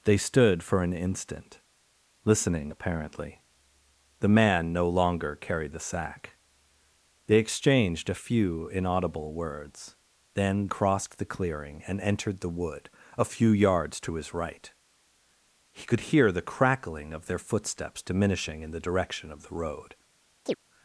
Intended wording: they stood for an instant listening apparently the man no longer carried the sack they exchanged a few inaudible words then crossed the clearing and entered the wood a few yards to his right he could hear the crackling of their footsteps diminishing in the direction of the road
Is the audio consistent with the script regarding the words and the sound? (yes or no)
no